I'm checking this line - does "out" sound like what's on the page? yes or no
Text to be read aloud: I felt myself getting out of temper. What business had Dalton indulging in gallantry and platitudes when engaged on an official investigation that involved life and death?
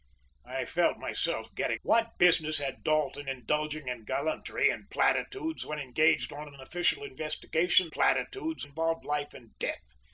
no